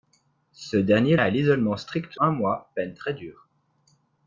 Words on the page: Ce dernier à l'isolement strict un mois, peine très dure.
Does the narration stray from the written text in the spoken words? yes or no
no